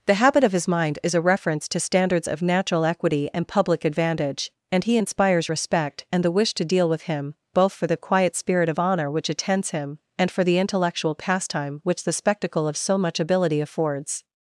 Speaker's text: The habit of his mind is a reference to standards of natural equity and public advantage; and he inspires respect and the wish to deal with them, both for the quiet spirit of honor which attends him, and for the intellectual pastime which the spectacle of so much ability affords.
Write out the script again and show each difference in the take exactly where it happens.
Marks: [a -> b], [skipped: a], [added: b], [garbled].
The habit of his mind is a reference to standards of natural equity and public advantage; and he inspires respect and the wish to deal with [them, -> him] both for the quiet spirit of honor which attends him, and for the intellectual pastime which the spectacle of so much ability affords.